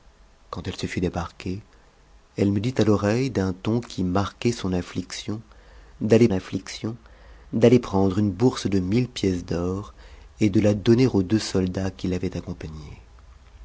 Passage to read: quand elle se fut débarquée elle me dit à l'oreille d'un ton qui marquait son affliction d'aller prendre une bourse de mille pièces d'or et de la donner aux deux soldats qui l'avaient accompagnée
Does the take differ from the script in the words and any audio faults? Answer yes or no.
yes